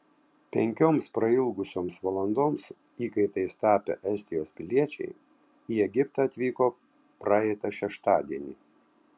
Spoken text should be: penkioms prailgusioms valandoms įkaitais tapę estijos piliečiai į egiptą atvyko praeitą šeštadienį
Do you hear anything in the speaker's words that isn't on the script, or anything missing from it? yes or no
no